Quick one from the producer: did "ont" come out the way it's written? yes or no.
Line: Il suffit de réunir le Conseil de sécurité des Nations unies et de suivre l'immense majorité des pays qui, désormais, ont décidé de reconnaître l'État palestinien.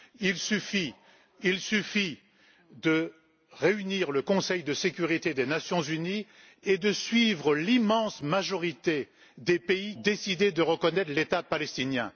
no